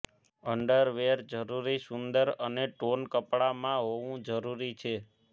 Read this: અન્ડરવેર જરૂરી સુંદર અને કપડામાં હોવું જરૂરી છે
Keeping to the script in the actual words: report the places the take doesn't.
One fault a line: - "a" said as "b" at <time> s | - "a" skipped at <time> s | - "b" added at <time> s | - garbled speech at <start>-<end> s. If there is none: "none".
- "ટોન" added at 2.7 s